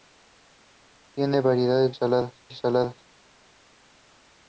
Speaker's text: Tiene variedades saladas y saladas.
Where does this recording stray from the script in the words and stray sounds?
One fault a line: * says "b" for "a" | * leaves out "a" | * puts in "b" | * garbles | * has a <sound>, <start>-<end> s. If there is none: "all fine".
all fine